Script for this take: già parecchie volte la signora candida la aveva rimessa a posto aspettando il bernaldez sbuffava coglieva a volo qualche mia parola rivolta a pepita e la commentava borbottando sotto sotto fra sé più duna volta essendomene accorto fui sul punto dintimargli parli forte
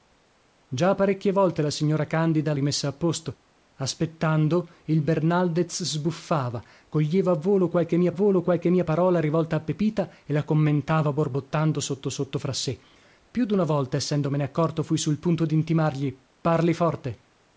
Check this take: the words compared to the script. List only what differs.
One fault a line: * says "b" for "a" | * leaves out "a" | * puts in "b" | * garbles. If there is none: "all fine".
* leaves out "la aveva"
* puts in "volo qualche mia"